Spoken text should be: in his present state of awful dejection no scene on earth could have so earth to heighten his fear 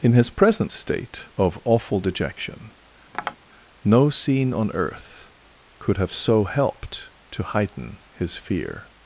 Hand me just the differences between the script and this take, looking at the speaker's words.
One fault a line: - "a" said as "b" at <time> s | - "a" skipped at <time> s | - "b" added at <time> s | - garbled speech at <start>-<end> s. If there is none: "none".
- "earth" said as "helped" at 6.4 s